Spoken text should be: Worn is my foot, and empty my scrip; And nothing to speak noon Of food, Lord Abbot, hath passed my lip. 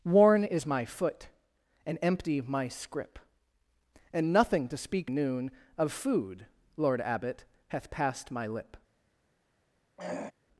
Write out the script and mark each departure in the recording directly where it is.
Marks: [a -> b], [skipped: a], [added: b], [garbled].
Worn is my foot, and empty my scrip; And nothing to speak noon Of food, Lord Abbot, hath passed my lip.